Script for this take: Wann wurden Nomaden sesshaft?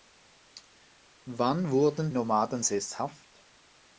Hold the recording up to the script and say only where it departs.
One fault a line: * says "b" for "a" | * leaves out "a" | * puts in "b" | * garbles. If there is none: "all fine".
all fine